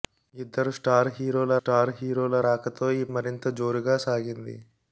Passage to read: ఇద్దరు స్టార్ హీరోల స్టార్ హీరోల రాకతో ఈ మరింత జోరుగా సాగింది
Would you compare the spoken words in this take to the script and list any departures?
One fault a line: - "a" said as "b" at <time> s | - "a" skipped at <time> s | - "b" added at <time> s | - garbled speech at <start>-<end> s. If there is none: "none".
none